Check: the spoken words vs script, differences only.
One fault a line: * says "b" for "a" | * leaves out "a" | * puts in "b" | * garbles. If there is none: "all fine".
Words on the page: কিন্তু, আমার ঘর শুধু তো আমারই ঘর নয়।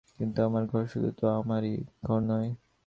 all fine